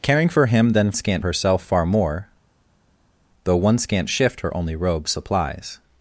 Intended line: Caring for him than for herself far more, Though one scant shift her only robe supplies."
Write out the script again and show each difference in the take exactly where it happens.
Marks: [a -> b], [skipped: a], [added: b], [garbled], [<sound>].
Caring for him than [for -> scant] herself far more, Though one scant shift her only robe supplies."